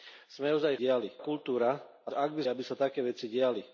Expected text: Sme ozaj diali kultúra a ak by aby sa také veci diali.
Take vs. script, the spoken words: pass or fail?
pass